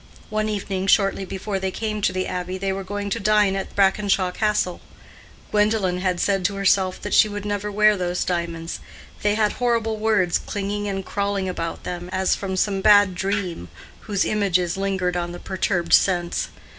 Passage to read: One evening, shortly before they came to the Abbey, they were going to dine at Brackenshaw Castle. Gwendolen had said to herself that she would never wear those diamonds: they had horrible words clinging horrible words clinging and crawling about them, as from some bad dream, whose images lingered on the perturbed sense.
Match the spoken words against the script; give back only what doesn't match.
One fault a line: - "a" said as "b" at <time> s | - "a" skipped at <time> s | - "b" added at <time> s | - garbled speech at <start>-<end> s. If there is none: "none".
- "horrible words clinging" skipped at 10.9 s